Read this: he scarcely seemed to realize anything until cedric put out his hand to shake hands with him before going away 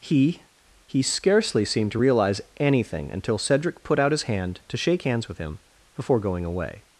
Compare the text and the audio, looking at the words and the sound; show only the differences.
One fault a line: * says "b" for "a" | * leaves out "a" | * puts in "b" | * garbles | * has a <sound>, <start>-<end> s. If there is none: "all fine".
* puts in "he"